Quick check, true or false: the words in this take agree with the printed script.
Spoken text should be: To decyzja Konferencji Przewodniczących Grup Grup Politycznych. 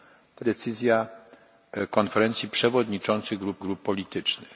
true